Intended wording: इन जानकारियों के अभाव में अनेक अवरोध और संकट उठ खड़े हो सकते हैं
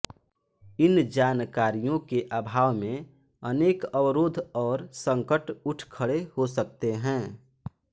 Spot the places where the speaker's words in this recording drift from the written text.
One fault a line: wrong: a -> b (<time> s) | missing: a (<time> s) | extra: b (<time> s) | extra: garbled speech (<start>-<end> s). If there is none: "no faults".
no faults